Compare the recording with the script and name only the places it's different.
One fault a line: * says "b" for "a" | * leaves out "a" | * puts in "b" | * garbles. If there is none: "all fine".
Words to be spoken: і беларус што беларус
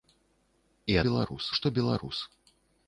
all fine